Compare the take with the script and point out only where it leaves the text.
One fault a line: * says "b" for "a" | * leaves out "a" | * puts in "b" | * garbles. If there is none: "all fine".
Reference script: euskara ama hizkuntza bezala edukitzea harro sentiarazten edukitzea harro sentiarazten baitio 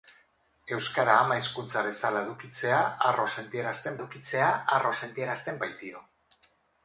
all fine